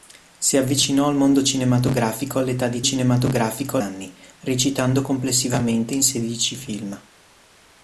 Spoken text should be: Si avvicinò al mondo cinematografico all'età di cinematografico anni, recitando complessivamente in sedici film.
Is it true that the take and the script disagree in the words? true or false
false